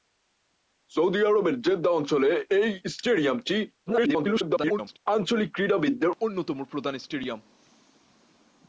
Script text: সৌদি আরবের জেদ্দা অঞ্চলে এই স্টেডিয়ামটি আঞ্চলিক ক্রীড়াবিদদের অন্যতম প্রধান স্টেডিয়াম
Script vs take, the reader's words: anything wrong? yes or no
yes